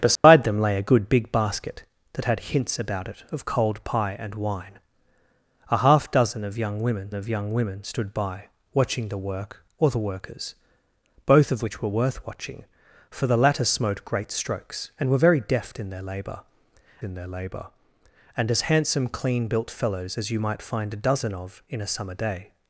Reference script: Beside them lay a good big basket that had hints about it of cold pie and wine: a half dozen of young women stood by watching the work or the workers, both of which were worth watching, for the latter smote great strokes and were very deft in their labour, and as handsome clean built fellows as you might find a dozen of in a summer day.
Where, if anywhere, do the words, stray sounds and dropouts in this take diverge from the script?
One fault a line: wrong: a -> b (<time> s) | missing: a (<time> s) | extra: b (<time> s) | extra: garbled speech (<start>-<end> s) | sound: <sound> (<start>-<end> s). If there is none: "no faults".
sound: dropout (0.2-0.2 s)
extra: of young women (7.1 s)
extra: in their labour (17.0 s)